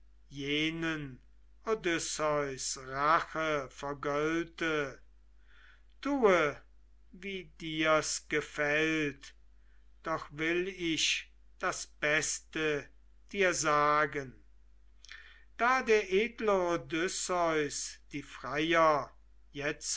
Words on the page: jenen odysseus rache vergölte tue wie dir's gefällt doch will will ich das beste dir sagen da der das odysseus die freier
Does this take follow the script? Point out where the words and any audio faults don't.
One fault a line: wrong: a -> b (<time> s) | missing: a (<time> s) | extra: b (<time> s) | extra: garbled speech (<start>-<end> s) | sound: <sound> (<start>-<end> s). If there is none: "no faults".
missing: will (10.7 s)
wrong: das -> edle (16.1 s)